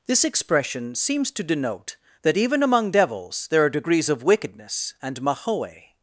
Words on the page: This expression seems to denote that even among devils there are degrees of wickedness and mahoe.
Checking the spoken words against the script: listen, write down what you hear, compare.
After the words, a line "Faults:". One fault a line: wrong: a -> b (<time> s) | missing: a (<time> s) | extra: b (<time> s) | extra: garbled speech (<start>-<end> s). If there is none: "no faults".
This expression seems to denote that even among devils there are degrees of wickedness and mahoe.
Faults:
no faults